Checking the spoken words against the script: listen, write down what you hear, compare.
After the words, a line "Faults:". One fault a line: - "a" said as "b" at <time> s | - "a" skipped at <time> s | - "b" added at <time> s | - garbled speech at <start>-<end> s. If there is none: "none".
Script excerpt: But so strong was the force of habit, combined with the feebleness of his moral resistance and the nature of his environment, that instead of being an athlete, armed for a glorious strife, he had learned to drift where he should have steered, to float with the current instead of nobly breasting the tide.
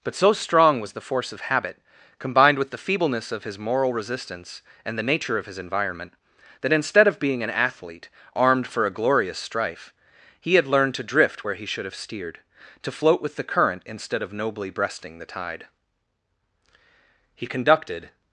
But so strong was the force of habit, combined with the feebleness of his moral resistance and the nature of his environment, that instead of being an athlete, armed for a glorious strife, he had learned to drift where he should have steered, to float with the current instead of nobly breasting the tide. He conducted
Faults:
- "He conducted" added at 17.3 s